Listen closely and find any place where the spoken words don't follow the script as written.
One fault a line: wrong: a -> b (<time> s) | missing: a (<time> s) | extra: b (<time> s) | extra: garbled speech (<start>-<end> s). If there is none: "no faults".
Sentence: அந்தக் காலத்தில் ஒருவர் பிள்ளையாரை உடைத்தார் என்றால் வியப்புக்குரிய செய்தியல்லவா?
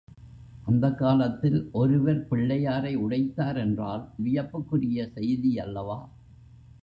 no faults